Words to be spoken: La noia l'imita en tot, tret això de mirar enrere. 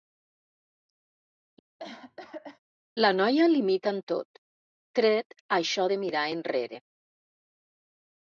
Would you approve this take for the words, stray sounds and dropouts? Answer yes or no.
no